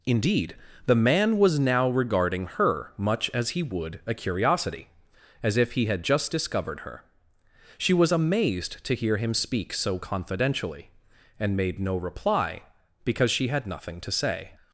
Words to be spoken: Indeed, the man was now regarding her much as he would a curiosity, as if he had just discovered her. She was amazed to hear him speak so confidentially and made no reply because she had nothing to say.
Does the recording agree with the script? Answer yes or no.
yes